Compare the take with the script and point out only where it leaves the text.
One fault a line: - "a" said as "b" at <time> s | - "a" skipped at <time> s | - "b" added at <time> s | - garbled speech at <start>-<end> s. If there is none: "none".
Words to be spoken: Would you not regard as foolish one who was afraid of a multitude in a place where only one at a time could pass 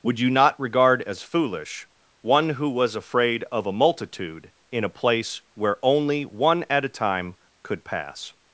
none